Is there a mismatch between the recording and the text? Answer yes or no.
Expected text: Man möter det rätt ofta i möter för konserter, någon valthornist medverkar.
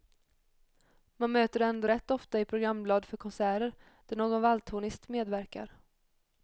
yes